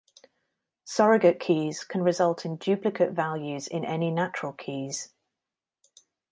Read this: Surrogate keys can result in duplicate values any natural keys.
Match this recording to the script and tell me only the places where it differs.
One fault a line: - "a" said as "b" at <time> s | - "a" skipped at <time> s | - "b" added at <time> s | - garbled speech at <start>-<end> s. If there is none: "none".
- "in" added at 3.7 s